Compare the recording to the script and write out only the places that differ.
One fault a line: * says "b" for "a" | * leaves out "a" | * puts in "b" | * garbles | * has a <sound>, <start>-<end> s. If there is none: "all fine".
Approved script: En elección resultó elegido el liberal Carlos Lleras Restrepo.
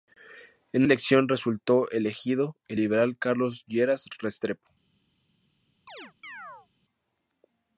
* has a chirp, 5.9-6.7 s